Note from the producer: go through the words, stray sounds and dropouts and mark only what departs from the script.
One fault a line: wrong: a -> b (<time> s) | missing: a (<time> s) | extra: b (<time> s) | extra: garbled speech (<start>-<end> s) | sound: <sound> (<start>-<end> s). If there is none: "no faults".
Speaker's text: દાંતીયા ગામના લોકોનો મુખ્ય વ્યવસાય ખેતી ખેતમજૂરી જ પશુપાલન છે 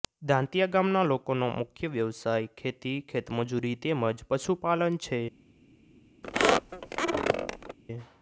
extra: તેમ (3.9 s)
sound: squeak (6.2-7.8 s)